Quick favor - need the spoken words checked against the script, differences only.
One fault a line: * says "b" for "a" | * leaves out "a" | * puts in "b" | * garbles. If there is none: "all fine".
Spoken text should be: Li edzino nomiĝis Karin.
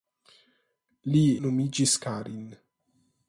* leaves out "edzino"